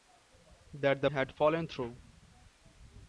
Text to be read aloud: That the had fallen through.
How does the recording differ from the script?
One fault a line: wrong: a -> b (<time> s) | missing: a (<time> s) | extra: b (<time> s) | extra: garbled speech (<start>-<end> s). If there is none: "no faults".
no faults